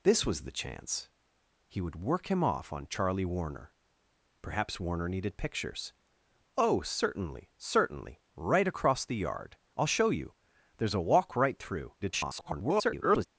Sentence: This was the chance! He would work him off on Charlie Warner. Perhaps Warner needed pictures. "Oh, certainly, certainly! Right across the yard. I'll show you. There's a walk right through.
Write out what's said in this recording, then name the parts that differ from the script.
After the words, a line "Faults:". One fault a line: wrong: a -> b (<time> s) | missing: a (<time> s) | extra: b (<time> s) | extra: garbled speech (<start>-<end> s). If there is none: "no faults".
This was the chance! He would work him off on Charlie Warner. Perhaps Warner needed pictures. "Oh, certainly, certainly! Right across the yard. I'll show you. There's a walk right through. [garbled]
Faults:
extra: garbled speech (12.0-13.3 s)